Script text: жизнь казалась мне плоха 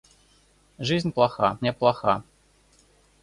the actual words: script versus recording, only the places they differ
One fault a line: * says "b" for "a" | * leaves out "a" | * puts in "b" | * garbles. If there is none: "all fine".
* says "плоха" for "казалась"